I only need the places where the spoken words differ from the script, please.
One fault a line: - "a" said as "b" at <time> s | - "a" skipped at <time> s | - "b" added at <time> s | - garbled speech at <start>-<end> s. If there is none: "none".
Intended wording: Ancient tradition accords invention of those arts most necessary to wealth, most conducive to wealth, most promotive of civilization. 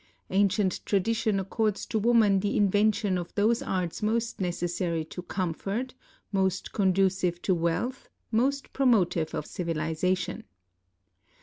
- "to woman the" added at 1.9 s
- "wealth" said as "comfort" at 5.2 s